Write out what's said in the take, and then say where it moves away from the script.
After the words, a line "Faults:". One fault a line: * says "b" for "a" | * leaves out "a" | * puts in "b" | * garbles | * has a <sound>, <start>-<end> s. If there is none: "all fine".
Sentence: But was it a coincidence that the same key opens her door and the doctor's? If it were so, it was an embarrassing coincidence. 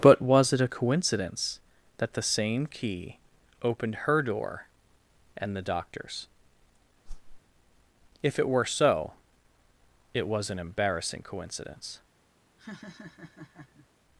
But was it a coincidence that the same key opened her door and the doctor's? If it were so, it was an embarrassing coincidence.
Faults:
* says "opened" for "opens"
* has a whoosh, 7.1-7.4 s
* has a laugh, 12.6-13.9 s